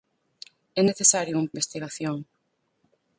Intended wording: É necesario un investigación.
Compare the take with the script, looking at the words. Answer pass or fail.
pass